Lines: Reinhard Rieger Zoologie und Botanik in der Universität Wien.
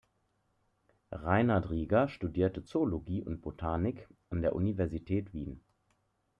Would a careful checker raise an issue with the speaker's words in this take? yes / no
yes